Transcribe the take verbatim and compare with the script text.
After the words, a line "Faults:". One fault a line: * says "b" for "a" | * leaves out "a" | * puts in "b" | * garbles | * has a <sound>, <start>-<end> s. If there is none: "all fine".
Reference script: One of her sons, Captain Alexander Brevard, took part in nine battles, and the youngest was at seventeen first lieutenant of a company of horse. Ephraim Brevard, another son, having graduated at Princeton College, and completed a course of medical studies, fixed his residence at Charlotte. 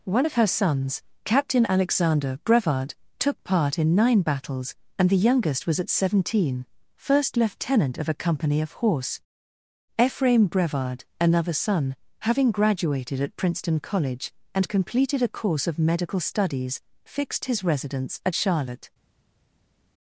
One of her sons, Captain Alexander Brevard, took part in nine battles, and the youngest was at seventeen first lieutenant of a company of horse. Ephraim Brevard, another son, having graduated at Princeton College, and completed a course of medical studies, fixed his residence at Charlotte.
Faults:
all fine